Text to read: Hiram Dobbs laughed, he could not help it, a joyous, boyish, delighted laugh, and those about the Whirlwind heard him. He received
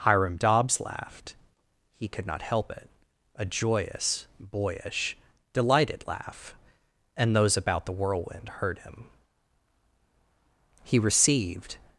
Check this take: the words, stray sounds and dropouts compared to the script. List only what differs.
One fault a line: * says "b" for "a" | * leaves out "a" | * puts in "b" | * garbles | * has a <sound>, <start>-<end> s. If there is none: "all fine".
all fine